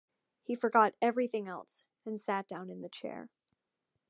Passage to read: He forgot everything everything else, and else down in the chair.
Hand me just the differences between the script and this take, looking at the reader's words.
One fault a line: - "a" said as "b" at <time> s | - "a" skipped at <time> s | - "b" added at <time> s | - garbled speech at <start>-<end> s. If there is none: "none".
- "everything" skipped at 1.5 s
- "else" said as "sat" at 2.2 s